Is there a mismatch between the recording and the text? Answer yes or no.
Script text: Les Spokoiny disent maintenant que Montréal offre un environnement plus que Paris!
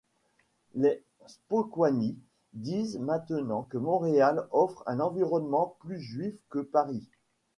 yes